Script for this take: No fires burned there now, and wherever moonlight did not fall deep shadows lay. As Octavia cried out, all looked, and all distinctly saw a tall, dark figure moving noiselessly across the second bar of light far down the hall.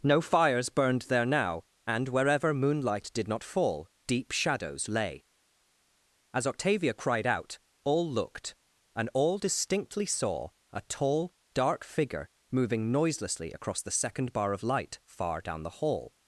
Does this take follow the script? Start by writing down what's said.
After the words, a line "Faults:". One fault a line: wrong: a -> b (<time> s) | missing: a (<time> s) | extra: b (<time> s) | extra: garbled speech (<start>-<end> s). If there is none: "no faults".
No fires burned there now, and wherever moonlight did not fall deep shadows lay. As Octavia cried out, all looked, and all distinctly saw a tall, dark figure moving noiselessly across the second bar of light far down the hall.
Faults:
no faults